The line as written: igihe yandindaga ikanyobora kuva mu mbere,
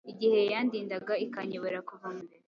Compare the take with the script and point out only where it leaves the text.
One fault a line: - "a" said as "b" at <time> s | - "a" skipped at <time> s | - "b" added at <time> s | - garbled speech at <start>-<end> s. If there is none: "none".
none